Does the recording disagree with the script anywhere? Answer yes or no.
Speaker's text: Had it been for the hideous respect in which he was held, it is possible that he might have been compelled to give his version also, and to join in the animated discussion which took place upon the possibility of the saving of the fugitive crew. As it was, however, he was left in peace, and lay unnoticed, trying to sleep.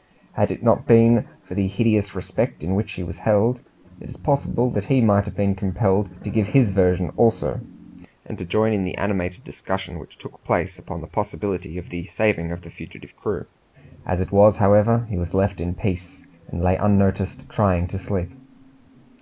yes